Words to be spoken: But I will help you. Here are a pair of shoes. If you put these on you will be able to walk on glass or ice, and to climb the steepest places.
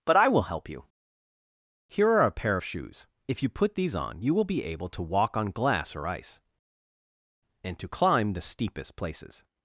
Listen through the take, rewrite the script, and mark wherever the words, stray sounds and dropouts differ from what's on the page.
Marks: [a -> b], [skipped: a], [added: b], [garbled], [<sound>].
But I will help you. Here are a pair of shoes. If you put these on you will be able to walk on glass or ice, and to climb the steepest places.